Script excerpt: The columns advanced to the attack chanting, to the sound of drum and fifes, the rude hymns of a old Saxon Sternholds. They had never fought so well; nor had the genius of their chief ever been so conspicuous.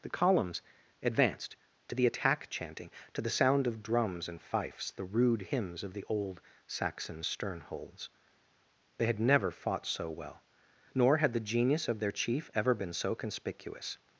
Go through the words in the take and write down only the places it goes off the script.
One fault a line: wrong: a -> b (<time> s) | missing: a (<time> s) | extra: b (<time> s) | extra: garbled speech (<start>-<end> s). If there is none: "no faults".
wrong: drum -> drums (3.8 s)
wrong: a -> the (5.9 s)